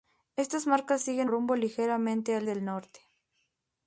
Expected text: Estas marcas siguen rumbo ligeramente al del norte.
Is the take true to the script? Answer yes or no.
yes